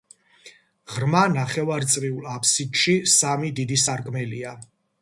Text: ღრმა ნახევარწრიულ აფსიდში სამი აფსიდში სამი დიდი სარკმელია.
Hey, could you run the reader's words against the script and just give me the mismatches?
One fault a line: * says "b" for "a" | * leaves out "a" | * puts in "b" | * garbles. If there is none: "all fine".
* leaves out "აფსიდში სამი"